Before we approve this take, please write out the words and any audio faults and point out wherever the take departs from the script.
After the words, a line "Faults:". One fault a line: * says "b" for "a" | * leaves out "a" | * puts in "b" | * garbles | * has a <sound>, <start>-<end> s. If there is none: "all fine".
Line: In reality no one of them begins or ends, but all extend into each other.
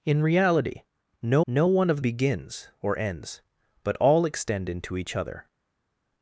In reality no no one of begins or ends, but all extend into each other.
Faults:
* puts in "no"
* leaves out "them"